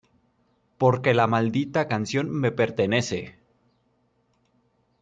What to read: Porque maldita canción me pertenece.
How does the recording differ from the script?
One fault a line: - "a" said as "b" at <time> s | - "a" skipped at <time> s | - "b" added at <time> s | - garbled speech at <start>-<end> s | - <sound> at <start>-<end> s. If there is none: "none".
- "la" added at 1.1 s